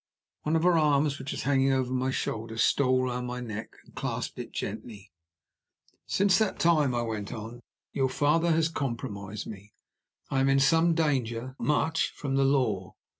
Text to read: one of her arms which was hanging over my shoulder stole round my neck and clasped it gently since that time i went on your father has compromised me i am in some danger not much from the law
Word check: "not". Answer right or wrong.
wrong